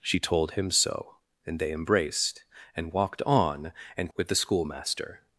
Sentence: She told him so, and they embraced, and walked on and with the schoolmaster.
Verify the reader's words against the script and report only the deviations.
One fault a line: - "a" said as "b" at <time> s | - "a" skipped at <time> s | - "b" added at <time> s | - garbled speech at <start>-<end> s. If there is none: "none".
none